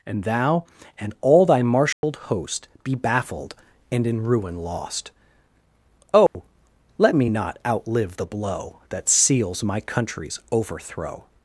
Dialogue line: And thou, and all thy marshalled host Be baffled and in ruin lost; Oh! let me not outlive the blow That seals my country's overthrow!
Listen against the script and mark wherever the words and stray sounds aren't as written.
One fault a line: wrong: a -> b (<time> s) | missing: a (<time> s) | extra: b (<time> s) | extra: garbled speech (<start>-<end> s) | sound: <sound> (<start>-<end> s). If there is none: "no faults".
sound: dropout (1.9-2.0 s)
sound: dropout (6.3-6.3 s)